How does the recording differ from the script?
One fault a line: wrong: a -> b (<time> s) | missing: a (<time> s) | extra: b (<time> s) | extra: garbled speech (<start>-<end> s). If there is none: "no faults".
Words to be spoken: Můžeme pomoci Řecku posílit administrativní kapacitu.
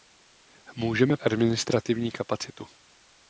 missing: pomoci Řecku posílit (1.2 s)